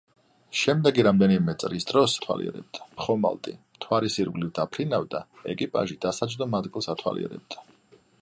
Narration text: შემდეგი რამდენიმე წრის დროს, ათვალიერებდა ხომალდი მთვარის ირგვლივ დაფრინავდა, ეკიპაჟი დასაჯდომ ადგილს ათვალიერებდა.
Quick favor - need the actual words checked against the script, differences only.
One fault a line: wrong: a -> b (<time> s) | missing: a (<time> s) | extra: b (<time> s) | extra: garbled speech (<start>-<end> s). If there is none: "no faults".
no faults